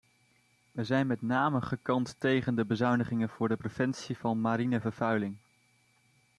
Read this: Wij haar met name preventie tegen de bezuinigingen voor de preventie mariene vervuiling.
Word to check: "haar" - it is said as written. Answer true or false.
false